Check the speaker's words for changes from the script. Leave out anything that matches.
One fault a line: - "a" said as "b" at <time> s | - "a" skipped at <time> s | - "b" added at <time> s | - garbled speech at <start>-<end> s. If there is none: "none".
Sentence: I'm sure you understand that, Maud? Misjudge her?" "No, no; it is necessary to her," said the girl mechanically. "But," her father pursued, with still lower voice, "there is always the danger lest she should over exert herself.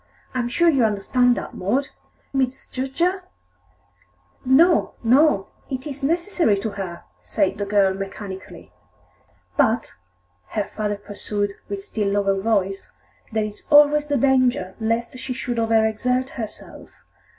none